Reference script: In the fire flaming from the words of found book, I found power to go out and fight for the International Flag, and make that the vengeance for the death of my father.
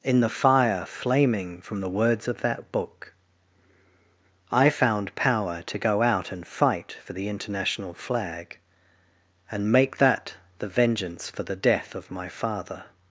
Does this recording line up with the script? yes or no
no